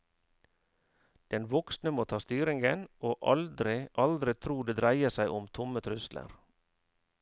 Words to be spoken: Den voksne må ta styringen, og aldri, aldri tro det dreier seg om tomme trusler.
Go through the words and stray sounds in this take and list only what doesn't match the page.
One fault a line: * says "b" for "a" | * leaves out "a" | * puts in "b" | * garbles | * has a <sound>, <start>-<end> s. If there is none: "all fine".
all fine